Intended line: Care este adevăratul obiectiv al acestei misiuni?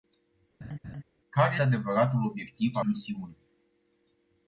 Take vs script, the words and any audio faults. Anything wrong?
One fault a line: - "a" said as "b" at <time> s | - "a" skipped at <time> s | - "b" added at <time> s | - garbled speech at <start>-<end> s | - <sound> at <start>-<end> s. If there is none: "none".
- laugh at 0.6-1.0 s
- "este" skipped at 1.6 s
- "acestei" skipped at 2.8 s